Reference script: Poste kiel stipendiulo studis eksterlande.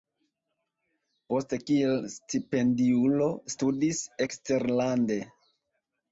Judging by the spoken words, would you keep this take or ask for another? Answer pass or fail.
pass